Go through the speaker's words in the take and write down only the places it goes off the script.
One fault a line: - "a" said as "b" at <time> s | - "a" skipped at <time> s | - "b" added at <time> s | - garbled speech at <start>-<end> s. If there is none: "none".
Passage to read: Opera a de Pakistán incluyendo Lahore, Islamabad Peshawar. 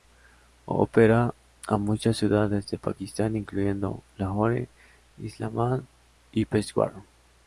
- "muchas ciudades" added at 1.8 s
- "y" added at 6.3 s